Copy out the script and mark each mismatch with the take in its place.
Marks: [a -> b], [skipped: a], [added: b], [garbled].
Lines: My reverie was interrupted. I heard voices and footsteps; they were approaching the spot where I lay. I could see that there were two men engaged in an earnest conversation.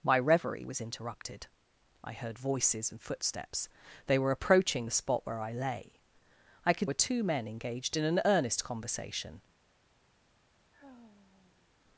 My reverie was interrupted. I heard voices and footsteps; they were approaching the spot where I lay. I could [skipped: see that there] were two men engaged in an earnest conversation.